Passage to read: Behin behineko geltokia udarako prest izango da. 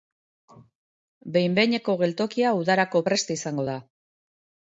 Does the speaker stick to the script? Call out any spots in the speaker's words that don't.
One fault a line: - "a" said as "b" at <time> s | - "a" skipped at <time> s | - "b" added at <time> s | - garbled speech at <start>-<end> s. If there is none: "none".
none